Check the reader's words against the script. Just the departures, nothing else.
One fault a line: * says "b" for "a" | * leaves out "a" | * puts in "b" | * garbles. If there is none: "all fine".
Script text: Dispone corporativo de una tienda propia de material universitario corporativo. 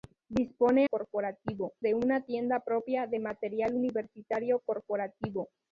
all fine